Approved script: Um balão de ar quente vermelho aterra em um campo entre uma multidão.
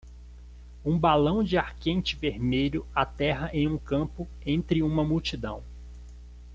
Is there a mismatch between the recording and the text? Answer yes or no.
no